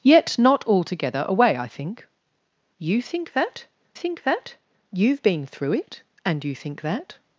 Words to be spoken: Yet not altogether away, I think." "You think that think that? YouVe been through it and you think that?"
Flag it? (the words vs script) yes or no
no